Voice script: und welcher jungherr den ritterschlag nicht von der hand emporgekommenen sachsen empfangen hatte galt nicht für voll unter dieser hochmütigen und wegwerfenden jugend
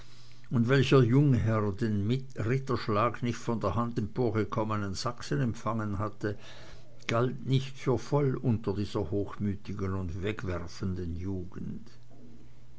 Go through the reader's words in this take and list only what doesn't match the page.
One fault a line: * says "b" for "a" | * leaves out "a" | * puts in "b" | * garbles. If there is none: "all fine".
all fine